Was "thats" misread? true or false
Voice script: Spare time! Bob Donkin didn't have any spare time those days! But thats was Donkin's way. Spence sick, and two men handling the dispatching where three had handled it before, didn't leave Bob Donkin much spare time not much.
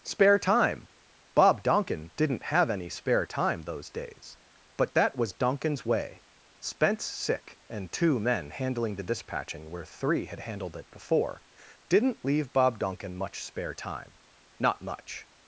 true